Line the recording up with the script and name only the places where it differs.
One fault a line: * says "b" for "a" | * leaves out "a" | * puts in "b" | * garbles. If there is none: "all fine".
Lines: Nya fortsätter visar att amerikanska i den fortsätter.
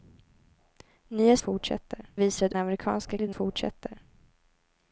all fine